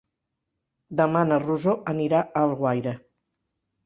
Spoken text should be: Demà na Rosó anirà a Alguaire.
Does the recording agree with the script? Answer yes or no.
yes